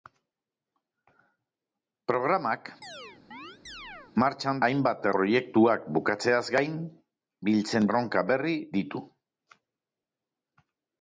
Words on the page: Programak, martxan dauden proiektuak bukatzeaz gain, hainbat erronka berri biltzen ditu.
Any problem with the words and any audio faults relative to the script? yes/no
yes